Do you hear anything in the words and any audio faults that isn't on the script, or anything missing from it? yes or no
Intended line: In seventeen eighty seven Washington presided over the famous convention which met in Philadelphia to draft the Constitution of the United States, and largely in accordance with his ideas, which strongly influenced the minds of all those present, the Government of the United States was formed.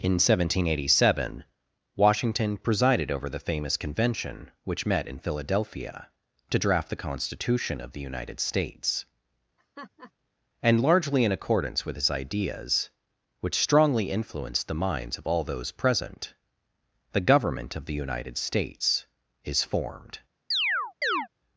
yes